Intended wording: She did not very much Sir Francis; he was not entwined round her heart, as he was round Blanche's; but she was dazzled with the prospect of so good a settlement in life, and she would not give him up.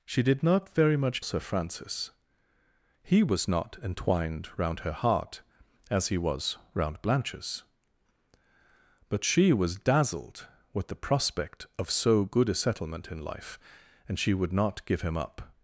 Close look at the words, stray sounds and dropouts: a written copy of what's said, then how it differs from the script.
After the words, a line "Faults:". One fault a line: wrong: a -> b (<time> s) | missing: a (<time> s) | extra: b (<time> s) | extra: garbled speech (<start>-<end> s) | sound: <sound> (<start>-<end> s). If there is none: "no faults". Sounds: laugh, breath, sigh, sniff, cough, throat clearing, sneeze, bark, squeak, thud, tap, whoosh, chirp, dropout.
She did not very much Sir Francis; he was not entwined round her heart, as he was round Blanche's; but she was dazzled with the prospect of so good a settlement in life, and she would not give him up.
Faults:
no faults